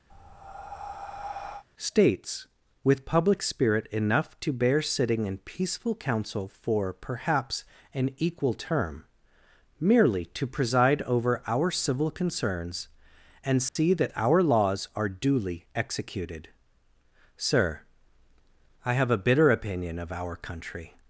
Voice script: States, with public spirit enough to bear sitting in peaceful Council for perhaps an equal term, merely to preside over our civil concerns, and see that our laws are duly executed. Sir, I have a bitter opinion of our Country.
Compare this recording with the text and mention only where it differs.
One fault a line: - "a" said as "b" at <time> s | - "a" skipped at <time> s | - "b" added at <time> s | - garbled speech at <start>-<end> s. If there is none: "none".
none